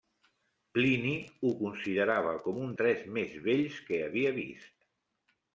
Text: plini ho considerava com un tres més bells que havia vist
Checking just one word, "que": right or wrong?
right